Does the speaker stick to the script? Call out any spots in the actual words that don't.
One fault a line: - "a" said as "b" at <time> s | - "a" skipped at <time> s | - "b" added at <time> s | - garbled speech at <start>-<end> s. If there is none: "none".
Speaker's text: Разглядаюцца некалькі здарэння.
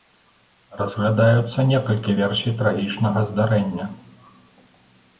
- "версій трагічнага" added at 2.2 s